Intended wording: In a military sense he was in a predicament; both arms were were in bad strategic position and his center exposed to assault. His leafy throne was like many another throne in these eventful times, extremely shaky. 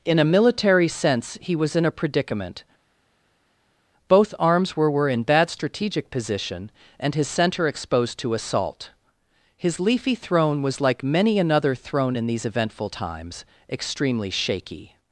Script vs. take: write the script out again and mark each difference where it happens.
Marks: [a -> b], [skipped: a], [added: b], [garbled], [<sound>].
In a military sense he was in a predicament; both arms were were in bad strategic position and his center exposed to assault. His leafy throne was like many another throne in these eventful times, extremely shaky.